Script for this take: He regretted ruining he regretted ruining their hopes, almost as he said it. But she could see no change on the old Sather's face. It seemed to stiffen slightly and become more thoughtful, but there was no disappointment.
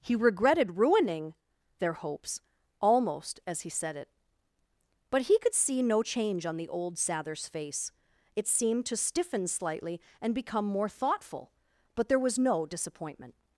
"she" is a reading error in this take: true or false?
true